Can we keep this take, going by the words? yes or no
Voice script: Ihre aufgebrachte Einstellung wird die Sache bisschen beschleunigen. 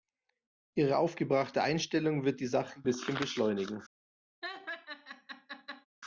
yes